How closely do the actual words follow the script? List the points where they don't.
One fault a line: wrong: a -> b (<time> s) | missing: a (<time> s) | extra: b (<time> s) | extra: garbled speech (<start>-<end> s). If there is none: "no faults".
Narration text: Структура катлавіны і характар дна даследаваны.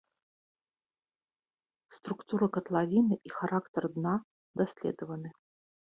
no faults